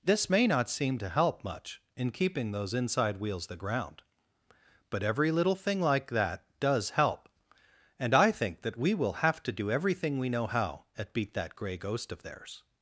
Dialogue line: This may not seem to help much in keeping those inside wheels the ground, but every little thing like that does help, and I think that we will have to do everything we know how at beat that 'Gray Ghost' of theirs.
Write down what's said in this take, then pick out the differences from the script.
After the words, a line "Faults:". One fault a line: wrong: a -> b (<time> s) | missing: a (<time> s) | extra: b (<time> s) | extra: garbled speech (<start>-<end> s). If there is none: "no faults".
This may not seem to help much in keeping those inside wheels the ground, but every little thing like that does help, and I think that we will have to do everything we know how at beat that 'Gray Ghost' of theirs.
Faults:
no faults